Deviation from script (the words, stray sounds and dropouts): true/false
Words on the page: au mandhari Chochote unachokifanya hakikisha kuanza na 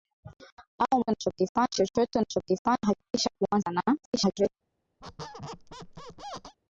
true